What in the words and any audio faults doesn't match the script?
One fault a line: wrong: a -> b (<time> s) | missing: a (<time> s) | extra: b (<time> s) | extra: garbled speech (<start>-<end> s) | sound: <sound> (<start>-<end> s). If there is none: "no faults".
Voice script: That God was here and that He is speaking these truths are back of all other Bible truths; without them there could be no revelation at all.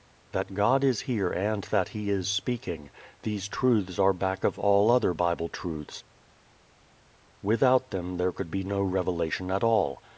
wrong: was -> is (0.8 s)